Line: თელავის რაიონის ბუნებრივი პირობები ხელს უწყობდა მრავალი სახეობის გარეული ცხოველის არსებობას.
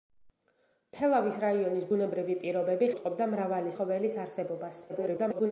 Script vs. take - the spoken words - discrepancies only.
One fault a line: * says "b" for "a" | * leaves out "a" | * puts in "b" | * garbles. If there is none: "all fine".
* leaves out "ხელს"
* leaves out "სახეობის გარეული"
* garbles